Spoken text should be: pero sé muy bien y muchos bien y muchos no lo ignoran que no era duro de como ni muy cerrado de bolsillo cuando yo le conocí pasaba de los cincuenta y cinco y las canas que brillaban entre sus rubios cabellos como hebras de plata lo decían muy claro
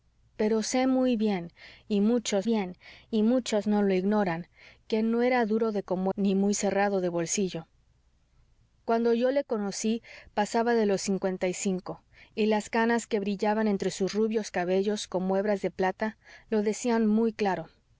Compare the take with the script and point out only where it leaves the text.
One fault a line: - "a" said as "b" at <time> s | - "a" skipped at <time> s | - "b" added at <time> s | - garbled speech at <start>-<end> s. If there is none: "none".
none